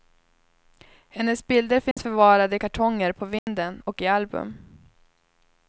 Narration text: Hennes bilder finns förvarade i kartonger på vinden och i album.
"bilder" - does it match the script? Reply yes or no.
yes